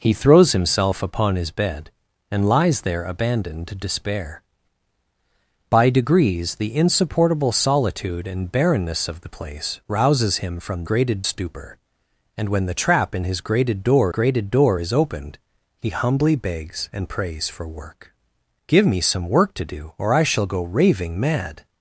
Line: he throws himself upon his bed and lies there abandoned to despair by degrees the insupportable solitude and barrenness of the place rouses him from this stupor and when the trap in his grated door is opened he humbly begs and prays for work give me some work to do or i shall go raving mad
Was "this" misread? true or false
true